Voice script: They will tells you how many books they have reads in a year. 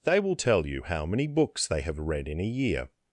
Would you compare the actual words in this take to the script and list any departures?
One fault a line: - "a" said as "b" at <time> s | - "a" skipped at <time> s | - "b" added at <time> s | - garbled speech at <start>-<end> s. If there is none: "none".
- "tells" said as "tell" at 0.3 s
- "reads" said as "read" at 2.0 s